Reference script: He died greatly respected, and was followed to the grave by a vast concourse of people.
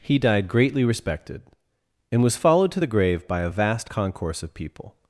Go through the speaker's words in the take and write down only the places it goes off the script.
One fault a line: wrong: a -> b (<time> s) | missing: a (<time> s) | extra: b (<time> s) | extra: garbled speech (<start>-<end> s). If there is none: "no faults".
no faults